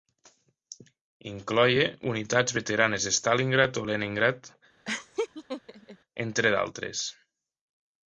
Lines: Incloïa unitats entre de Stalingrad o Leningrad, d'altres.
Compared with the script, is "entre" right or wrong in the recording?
wrong